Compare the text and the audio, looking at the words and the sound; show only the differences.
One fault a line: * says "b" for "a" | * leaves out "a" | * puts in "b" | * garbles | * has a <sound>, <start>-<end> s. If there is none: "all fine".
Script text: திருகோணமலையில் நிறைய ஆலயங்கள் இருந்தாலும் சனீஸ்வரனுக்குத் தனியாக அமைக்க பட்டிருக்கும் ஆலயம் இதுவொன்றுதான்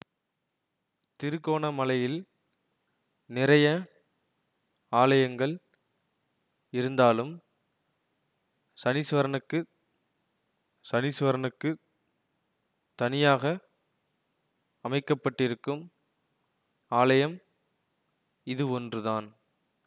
* puts in "சனீஸ்வரனுக்குத்"